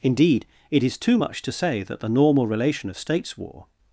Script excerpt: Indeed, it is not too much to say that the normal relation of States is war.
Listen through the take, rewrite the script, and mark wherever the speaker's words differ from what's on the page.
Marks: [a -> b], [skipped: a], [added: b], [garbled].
Indeed, it is [skipped: not] too much to say that the normal relation of States [skipped: is] war.